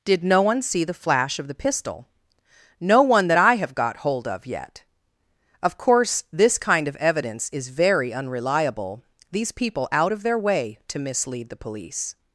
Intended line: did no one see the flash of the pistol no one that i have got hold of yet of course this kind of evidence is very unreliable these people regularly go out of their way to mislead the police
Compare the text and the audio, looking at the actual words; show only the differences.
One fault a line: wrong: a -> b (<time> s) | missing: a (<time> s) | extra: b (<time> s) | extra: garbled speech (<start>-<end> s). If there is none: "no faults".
missing: regularly go (9.9 s)